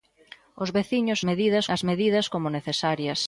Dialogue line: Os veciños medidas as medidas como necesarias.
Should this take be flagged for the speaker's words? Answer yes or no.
no